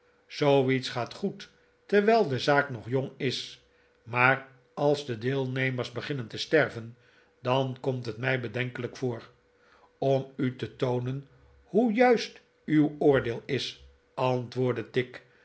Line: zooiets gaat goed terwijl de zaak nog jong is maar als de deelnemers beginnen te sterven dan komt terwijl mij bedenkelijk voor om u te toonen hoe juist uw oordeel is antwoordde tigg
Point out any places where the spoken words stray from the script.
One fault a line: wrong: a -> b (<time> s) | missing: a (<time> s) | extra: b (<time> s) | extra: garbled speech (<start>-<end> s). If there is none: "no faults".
wrong: terwijl -> het (8.1 s)